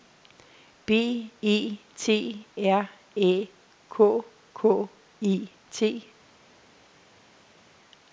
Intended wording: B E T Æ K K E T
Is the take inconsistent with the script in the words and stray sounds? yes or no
yes